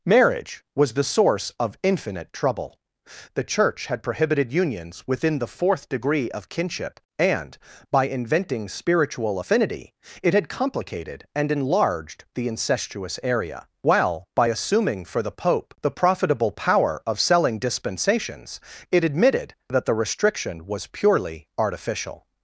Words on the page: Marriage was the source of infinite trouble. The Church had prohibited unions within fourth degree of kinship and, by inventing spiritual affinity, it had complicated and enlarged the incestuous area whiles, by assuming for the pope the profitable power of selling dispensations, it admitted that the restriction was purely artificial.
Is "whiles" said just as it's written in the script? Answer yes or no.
no